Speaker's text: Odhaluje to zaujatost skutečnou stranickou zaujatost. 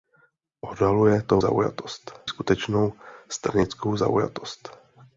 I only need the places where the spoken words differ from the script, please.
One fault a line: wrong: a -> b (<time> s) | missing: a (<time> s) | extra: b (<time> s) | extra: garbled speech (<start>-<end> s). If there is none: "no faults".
no faults